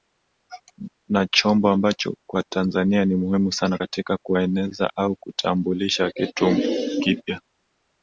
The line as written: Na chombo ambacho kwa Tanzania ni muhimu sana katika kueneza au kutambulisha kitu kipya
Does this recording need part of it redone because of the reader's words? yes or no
no